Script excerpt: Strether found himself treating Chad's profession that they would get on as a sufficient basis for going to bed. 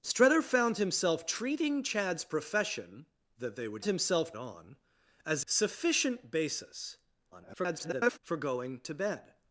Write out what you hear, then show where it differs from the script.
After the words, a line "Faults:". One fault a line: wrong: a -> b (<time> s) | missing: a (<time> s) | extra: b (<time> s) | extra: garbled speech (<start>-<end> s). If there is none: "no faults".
Strether found himself treating Chad's profession that they would himself on as sufficient basis [garbled] for going to bed.
Faults:
wrong: get -> himself (3.8 s)
missing: a (5.4 s)
extra: garbled speech (7.3-8.2 s)